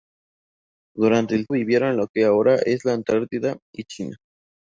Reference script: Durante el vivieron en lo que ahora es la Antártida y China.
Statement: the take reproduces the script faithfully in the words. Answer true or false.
true